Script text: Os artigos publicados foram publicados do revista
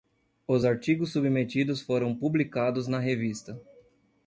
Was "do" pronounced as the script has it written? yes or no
no